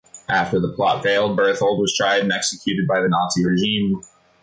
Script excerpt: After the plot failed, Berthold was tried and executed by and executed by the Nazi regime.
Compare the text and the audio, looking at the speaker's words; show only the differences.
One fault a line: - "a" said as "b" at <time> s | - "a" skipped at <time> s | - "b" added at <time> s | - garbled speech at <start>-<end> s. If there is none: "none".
- "and executed by" skipped at 3.0 s